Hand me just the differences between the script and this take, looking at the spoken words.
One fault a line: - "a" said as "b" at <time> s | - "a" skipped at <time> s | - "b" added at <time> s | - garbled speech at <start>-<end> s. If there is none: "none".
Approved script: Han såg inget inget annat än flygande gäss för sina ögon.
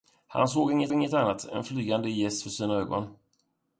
none